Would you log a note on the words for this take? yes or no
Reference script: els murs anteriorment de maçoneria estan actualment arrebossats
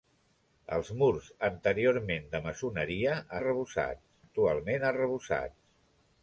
yes